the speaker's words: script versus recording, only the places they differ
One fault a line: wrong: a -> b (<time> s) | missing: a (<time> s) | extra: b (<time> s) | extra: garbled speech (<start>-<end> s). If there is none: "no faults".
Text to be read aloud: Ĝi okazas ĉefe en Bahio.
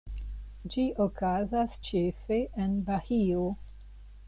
no faults